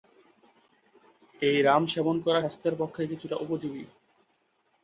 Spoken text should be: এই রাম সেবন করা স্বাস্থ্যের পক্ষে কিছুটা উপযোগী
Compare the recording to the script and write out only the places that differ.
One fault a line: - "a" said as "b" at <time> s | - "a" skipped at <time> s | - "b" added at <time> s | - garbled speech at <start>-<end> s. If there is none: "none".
none